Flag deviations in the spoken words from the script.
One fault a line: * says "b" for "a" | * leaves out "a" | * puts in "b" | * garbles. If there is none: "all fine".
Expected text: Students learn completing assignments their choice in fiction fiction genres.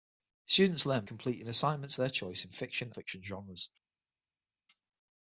all fine